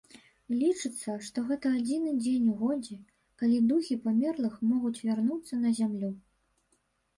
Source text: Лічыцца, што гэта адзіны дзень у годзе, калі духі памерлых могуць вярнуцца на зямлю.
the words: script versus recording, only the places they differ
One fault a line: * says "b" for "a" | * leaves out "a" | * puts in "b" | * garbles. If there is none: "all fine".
all fine